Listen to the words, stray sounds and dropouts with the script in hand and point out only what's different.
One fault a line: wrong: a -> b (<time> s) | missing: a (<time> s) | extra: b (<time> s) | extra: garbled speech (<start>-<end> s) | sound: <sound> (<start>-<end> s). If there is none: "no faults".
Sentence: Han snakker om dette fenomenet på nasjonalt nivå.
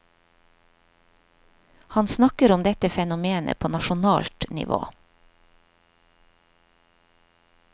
no faults